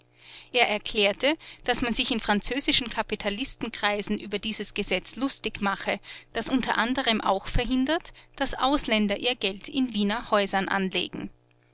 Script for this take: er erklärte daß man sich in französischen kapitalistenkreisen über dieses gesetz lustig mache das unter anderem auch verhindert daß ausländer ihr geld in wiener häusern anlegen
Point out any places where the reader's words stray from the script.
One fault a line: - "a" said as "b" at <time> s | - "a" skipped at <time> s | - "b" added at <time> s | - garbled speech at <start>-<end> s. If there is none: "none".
none